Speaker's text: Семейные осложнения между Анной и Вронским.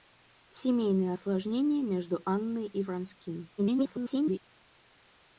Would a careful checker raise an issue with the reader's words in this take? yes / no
yes